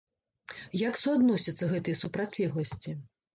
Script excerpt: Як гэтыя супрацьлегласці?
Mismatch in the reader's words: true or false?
true